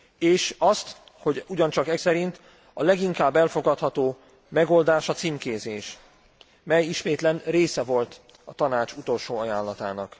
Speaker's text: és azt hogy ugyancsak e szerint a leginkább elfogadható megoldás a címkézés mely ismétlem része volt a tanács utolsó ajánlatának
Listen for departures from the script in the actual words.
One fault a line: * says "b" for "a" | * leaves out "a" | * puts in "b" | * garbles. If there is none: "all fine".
all fine